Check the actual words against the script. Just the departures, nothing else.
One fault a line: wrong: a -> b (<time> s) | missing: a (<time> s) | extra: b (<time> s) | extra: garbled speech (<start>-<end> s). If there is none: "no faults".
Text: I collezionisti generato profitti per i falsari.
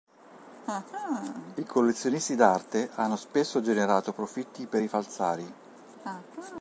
extra: d'arte hanno spesso (2.4 s)